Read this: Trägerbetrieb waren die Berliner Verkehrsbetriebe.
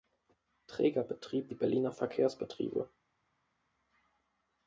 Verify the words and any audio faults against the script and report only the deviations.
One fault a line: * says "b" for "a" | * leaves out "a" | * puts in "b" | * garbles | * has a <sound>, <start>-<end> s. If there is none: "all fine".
* leaves out "waren"